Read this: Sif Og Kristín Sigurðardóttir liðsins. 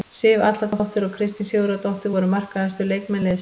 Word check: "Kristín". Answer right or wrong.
right